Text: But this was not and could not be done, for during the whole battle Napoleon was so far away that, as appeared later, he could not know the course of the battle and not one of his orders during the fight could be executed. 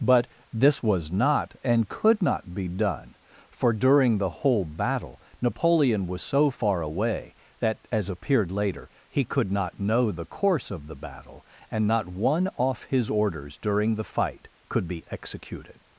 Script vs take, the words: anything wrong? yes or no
yes